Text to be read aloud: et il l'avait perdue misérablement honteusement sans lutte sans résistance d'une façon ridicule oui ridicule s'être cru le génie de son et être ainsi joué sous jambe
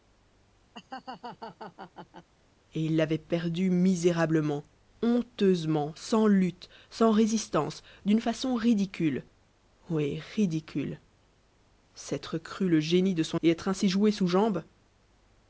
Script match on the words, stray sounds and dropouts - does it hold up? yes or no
no